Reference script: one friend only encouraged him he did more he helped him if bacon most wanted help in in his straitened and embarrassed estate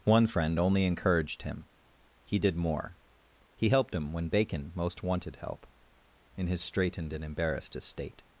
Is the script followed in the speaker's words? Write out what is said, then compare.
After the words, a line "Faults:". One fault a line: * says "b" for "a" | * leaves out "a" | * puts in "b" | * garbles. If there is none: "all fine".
one friend only encouraged him he did more he helped him when bacon most wanted help in his straitened and embarrassed estate
Faults:
* says "when" for "if"
* leaves out "in"